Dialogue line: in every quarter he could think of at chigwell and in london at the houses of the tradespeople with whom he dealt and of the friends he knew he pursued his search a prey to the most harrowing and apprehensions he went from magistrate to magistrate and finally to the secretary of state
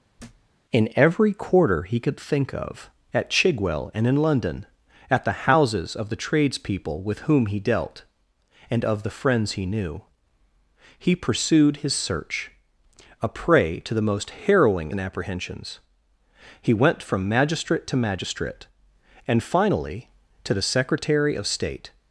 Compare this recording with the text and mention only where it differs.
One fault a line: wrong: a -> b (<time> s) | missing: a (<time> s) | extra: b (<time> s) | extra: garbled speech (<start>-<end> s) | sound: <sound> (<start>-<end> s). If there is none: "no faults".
sound: thud (0.2-0.5 s)